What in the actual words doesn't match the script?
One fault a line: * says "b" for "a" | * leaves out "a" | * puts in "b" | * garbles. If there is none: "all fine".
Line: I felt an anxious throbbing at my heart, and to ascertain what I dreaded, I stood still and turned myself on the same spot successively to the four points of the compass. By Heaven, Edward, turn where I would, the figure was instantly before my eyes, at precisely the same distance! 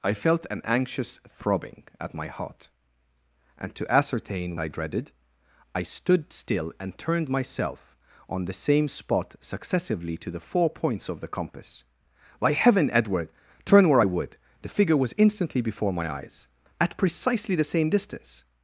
* leaves out "what"